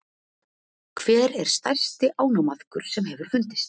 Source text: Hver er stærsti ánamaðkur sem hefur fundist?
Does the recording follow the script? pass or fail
pass